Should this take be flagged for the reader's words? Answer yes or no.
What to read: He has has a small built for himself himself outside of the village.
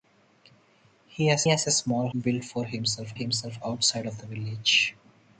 no